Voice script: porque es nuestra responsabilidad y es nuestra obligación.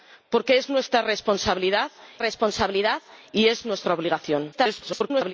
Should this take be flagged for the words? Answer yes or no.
yes